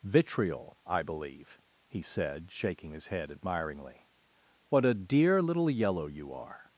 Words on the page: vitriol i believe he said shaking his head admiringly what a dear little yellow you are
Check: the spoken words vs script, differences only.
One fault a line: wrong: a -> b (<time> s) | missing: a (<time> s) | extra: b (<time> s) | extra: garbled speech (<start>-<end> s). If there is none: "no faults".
no faults